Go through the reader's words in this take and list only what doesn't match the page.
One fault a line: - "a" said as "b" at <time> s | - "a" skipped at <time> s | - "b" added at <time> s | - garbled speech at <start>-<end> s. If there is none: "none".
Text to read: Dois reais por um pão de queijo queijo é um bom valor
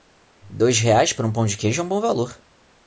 - "queijo" skipped at 1.8 s